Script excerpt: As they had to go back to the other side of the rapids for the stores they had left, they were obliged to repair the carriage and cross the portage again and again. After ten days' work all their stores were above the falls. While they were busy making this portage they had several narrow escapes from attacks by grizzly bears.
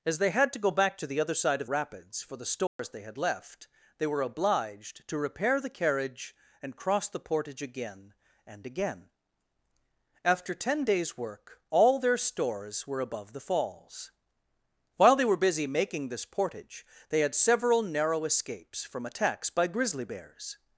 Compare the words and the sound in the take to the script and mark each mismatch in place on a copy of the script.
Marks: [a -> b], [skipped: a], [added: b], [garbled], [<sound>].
As they had to go back to the other side of [skipped: the] rapids for the stores [dropout] they had left, they were obliged to repair the carriage and cross the portage again and again. After ten days' work all their stores were above the falls. While they were busy making this portage they had several narrow escapes from attacks by grizzly bears.